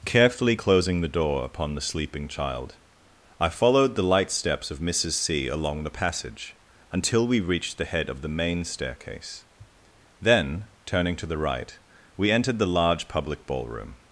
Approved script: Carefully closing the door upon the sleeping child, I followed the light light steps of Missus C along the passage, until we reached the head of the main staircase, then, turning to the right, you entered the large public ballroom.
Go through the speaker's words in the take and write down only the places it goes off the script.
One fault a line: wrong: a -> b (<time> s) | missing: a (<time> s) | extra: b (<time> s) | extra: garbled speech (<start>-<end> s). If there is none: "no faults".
missing: light (4.3 s)
wrong: you -> we (12.2 s)